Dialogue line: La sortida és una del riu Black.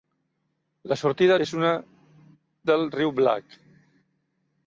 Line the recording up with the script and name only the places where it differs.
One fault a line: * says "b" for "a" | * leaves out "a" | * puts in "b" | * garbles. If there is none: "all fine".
all fine